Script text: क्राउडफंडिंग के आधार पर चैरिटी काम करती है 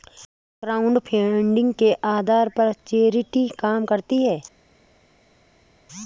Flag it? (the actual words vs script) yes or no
no